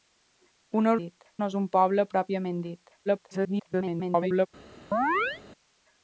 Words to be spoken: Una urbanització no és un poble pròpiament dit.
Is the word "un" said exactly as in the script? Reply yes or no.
yes